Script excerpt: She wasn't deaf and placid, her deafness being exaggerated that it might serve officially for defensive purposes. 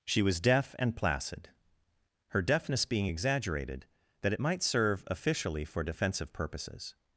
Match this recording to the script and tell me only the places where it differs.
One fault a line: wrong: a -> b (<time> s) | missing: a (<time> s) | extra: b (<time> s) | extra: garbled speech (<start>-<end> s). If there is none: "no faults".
wrong: wasn't -> was (0.2 s)